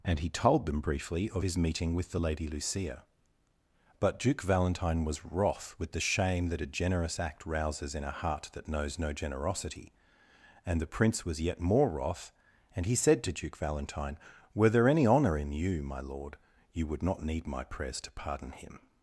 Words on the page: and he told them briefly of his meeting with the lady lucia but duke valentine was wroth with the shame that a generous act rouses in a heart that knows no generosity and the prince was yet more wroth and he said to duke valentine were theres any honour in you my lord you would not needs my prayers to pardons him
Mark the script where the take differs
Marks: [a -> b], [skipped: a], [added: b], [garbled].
and he told them briefly of his meeting with the lady lucia but duke valentine was wroth with the shame that a generous act rouses in a heart that knows no generosity and the prince was yet more wroth and he said to duke valentine were [theres -> there] any honour in you my lord you would not [needs -> need] my prayers to [pardons -> pardon] him